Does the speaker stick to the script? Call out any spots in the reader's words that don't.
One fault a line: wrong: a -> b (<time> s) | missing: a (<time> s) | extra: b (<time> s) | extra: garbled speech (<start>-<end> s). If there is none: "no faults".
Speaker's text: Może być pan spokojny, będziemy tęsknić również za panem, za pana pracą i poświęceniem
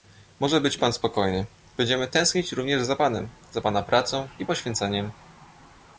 no faults